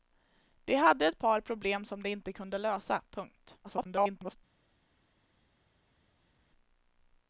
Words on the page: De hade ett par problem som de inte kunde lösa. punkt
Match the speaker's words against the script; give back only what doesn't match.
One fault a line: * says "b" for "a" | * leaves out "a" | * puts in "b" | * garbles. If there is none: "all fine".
* garbles